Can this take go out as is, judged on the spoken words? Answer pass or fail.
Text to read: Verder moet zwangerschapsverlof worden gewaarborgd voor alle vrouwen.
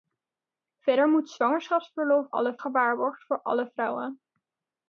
fail